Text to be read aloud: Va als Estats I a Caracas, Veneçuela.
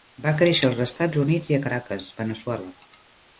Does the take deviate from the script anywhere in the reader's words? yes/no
yes